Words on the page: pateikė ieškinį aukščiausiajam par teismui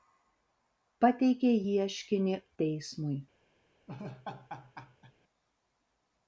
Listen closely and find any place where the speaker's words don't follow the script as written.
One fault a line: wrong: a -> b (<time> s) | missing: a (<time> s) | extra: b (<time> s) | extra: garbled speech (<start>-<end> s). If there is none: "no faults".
missing: aukščiausiajam par (2.4 s)